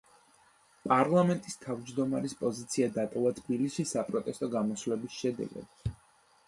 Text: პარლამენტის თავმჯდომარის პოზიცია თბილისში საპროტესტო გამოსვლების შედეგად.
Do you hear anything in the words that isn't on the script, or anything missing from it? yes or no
yes